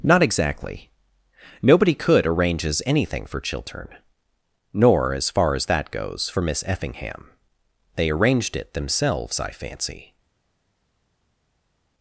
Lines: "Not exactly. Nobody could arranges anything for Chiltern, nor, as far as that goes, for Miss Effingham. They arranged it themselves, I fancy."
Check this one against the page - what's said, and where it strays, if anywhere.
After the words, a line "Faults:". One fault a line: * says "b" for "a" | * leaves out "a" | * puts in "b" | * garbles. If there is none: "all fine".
"Not exactly. Nobody could arranges anything for Chiltern, nor, as far as that goes, for Miss Effingham. They arranged it themselves, I fancy."
Faults:
all fine